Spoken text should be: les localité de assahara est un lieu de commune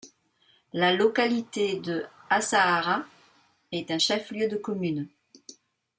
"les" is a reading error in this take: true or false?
true